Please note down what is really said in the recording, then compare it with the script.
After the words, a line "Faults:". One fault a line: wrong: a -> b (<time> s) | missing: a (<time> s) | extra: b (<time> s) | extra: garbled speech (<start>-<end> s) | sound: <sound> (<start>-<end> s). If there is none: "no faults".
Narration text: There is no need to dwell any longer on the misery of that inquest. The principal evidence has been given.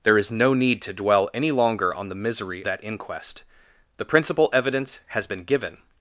There is no need to dwell any longer on the misery that inquest. The principal evidence has been given.
Faults:
missing: of (2.6 s)